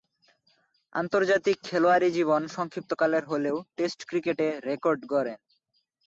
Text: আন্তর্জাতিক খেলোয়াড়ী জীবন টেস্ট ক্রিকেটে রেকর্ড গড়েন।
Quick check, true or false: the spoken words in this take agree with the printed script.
false